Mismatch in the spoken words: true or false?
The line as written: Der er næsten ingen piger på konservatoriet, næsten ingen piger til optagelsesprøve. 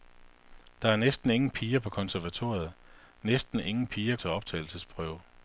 false